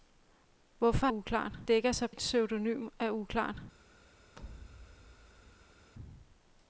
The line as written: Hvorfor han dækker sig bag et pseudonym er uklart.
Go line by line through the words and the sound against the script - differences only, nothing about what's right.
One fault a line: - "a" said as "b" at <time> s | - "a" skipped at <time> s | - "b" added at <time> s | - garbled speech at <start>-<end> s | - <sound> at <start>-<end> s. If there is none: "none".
- "han" said as "uklart" at 1.1 s
- "bag" skipped at 2.1 s
- thud at 4.4-5.9 s